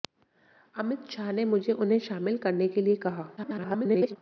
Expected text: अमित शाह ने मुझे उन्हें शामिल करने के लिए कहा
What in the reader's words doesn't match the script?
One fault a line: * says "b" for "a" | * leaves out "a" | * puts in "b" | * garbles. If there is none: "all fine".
* garbles